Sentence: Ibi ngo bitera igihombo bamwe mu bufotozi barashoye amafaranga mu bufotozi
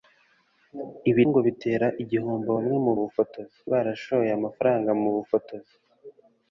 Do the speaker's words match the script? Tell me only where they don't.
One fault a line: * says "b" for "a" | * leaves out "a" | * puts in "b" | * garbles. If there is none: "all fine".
all fine